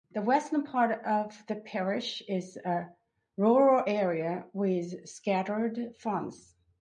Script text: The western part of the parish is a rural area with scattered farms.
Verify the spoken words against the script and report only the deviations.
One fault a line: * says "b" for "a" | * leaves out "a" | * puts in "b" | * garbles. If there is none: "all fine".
all fine